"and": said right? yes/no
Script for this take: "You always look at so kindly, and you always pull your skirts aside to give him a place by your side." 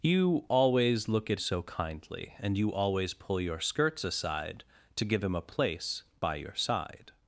yes